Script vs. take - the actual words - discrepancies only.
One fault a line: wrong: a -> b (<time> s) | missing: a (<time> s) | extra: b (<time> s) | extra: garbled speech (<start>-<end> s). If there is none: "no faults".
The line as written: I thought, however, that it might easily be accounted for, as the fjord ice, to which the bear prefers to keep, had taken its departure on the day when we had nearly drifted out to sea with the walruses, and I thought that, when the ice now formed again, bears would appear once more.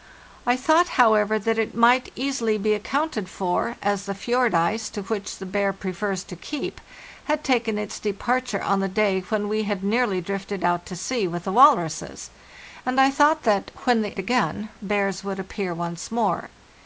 missing: ice now formed (14.1 s)